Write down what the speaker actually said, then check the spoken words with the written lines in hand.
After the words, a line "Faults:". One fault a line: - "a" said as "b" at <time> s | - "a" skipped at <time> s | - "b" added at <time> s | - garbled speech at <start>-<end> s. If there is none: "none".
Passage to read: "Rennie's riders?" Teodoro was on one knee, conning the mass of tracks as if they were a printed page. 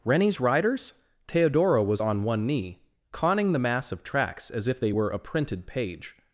"Rennie's riders?" Teodoro was on one knee, conning the mass of tracks as if they were a printed page.
Faults:
none